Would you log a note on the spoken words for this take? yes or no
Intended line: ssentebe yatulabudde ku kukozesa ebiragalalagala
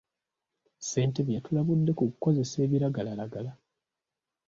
no